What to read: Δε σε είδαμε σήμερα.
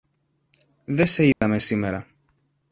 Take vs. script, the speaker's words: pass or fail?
pass